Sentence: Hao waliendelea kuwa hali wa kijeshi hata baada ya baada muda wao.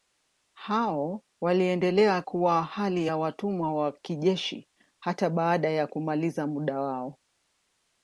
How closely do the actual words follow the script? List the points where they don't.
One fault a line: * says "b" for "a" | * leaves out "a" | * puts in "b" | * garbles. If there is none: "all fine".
* puts in "ya watumwa"
* says "kumaliza" for "baada"